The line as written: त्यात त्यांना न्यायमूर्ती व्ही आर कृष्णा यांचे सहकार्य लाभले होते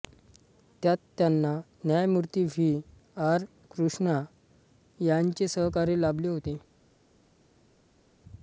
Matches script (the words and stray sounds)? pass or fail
pass